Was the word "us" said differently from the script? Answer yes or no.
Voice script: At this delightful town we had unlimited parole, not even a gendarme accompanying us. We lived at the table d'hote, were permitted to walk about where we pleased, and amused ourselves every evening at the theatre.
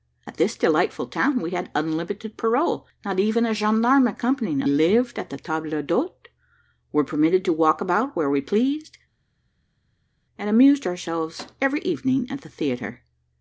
yes